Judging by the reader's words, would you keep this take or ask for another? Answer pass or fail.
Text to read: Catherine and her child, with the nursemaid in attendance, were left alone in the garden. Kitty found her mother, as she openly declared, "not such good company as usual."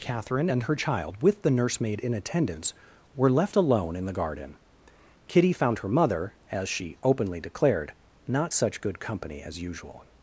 pass